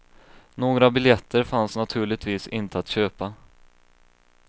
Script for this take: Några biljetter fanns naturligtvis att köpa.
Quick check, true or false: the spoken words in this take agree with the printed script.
false